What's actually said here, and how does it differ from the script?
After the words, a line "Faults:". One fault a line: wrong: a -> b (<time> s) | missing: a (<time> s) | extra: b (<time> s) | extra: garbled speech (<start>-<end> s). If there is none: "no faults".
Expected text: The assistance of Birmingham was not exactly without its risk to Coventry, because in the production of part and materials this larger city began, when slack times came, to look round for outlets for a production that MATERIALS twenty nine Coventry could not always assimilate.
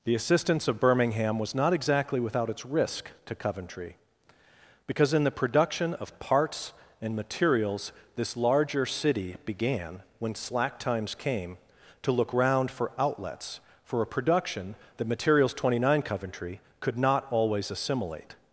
The assistance of Birmingham was not exactly without its risk to Coventry, because in the production of parts and materials this larger city began, when slack times came, to look round for outlets for a production that MATERIALS twenty nine Coventry could not always assimilate.
Faults:
wrong: part -> parts (6.2 s)